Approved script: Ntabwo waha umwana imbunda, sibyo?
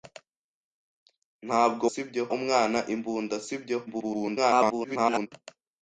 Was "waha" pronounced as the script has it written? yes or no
no